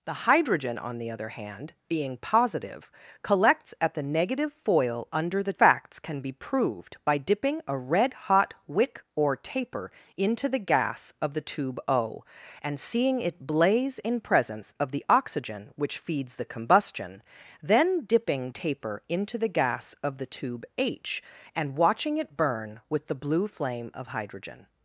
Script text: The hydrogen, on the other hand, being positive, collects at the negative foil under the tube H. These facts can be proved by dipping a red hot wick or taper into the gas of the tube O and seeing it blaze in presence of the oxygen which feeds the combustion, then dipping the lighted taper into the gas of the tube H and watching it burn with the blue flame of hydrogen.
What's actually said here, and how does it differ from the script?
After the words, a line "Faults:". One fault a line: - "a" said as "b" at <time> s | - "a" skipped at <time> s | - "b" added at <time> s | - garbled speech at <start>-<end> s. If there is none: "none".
The hydrogen, on the other hand, being positive, collects at the negative foil under the facts can be proved by dipping a red hot wick or taper into the gas of the tube O and seeing it blaze in presence of the oxygen which feeds the combustion, then dipping taper into the gas of the tube H and watching it burn with the blue flame of hydrogen.
Faults:
- "tube H These" skipped at 5.5 s
- "the lighted" skipped at 18.5 s